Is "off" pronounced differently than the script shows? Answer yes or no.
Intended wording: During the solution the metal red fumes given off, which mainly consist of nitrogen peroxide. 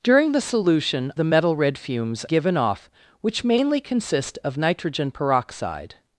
no